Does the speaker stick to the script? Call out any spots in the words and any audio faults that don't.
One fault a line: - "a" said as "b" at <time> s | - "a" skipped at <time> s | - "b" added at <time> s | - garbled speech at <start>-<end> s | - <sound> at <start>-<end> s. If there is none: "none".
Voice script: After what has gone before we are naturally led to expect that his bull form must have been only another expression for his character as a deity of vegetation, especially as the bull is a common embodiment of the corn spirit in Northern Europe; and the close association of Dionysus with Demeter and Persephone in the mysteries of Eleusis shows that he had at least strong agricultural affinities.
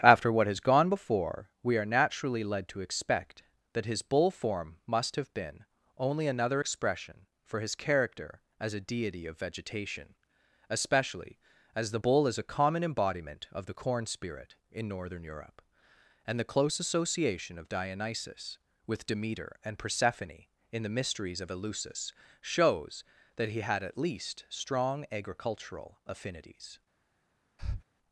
- breath at 27.6-27.8 s